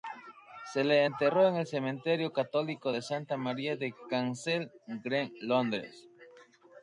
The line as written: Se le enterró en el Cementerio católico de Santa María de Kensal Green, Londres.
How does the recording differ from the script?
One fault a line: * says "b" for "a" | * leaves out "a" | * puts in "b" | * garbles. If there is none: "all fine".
all fine